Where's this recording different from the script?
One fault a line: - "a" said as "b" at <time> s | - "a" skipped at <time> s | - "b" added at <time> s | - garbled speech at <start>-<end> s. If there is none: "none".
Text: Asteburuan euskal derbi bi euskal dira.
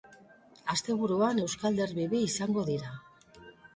- "euskal" said as "izango" at 2.3 s